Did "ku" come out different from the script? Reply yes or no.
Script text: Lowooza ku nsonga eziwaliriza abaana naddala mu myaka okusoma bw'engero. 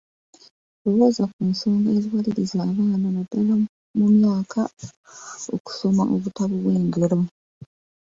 no